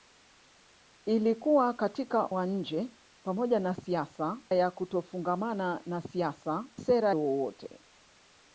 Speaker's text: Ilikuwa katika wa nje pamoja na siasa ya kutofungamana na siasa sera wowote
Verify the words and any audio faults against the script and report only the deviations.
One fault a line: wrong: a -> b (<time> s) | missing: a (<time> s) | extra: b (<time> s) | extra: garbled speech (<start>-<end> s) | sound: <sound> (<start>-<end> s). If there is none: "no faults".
no faults